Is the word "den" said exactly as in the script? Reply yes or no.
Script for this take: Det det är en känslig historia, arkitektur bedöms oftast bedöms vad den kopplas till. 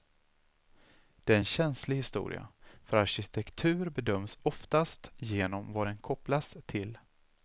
yes